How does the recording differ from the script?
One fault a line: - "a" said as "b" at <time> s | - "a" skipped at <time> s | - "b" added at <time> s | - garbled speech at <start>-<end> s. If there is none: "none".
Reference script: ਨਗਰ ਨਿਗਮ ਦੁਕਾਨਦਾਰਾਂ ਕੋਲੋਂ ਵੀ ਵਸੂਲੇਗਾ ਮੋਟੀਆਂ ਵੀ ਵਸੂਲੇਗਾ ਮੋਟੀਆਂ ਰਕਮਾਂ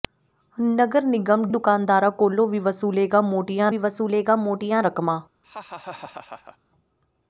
none